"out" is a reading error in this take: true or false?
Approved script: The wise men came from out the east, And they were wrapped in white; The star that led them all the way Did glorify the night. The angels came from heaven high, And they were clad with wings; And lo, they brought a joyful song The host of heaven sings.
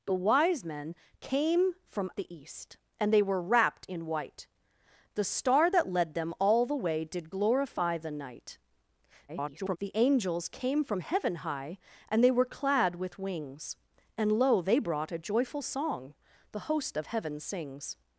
true